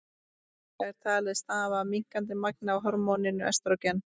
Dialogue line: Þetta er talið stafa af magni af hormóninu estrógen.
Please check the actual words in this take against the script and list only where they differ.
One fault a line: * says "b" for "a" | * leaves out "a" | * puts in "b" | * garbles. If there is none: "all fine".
* puts in "minnkandi"